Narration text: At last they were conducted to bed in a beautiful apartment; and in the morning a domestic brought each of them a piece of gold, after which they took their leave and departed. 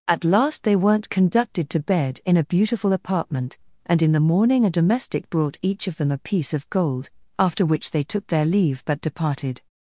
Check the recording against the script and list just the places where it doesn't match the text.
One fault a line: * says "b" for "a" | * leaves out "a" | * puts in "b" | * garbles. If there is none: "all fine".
* says "weren't" for "were"
* says "but" for "and"